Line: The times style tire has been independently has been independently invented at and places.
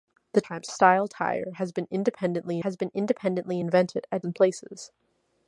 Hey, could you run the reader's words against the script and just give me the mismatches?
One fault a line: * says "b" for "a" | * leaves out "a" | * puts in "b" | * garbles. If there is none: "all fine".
all fine